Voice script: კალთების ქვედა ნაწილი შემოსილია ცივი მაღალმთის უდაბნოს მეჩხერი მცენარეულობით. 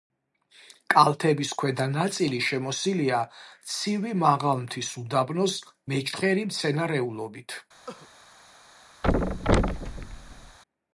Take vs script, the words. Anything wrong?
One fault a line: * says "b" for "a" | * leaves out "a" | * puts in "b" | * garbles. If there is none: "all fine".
all fine